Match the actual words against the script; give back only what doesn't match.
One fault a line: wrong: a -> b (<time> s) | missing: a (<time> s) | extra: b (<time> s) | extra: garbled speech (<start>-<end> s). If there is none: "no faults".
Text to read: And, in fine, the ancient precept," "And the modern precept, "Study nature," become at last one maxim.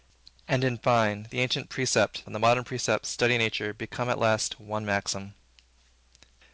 no faults